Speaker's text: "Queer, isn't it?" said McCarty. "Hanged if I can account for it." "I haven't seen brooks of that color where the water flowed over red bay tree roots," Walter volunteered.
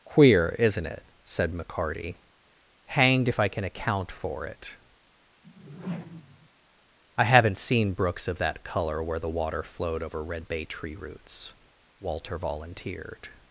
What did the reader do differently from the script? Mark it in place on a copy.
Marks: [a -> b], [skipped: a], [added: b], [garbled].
"Queer, isn't it?" said McCarty. "Hanged if I can account for it." "I haven't seen brooks of that color where the water flowed over red bay tree roots," Walter volunteered.